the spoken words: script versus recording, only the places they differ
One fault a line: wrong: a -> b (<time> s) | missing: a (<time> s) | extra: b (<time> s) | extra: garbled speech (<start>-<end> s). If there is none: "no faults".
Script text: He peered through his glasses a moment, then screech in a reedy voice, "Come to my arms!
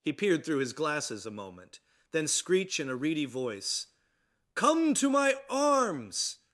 no faults